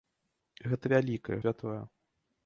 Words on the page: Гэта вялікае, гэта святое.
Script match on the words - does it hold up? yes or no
no